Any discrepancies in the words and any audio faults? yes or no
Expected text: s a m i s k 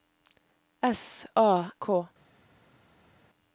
yes